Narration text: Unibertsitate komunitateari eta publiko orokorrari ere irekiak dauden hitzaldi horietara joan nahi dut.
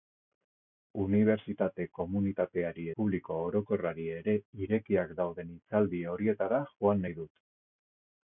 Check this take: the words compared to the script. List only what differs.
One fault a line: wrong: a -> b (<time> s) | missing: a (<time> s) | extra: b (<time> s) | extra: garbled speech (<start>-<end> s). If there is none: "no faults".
missing: eta (2.9 s)